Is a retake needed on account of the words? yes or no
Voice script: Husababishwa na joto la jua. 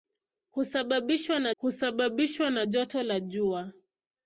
yes